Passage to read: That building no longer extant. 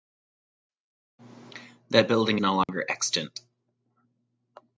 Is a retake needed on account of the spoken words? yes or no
no